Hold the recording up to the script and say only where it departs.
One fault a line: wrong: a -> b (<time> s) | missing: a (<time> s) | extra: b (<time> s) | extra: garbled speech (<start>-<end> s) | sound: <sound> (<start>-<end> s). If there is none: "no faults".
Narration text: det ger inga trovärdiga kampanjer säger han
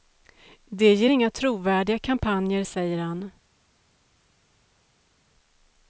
no faults